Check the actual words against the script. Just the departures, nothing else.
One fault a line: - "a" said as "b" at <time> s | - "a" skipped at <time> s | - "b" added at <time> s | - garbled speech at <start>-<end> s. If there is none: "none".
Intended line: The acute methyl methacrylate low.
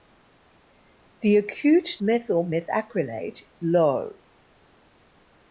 none